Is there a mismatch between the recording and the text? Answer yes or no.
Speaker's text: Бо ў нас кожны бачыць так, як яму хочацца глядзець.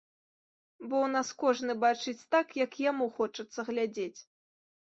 no